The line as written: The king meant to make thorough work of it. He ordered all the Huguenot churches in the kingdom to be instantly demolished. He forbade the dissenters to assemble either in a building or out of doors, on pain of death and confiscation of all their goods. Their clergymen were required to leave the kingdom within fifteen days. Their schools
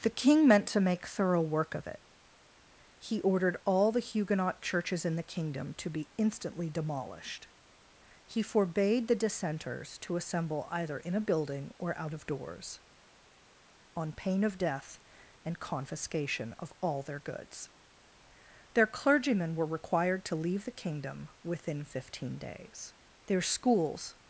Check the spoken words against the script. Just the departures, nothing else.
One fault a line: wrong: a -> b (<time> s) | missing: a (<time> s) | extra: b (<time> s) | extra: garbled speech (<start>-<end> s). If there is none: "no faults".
no faults